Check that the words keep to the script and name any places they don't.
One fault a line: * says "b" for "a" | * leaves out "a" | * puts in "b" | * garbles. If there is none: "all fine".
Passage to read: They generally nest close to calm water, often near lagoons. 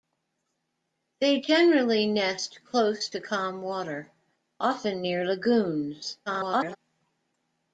* garbles